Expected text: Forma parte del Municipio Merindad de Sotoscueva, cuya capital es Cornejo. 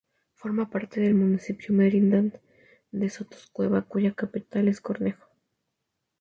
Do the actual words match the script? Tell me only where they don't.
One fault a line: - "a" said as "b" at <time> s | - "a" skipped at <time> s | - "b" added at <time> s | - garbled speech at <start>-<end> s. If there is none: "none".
none